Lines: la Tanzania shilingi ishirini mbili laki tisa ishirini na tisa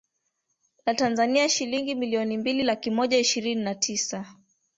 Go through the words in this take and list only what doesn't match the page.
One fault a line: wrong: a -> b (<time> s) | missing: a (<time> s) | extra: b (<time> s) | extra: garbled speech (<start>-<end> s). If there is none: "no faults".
wrong: ishirini -> milioni (1.9 s)
wrong: tisa -> moja (2.9 s)